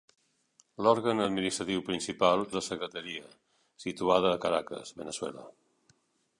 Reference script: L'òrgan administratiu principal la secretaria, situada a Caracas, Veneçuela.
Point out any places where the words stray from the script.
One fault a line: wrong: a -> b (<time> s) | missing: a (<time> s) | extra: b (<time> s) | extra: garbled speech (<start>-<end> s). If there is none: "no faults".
no faults